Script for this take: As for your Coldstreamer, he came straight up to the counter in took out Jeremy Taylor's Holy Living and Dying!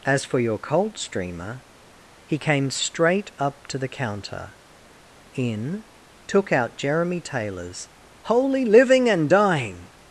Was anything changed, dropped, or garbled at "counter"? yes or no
no